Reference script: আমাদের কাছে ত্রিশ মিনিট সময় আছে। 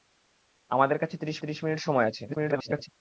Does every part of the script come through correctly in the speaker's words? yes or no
no